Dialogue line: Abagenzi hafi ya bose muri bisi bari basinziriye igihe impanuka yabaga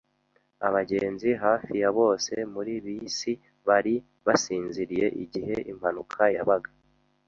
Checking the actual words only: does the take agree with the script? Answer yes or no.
yes